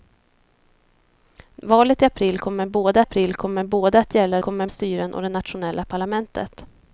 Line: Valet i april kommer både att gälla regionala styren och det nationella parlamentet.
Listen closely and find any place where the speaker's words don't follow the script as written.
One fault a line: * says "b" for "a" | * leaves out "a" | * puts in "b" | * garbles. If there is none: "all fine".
* puts in "april kommer både"
* says "kommer" for "regionala"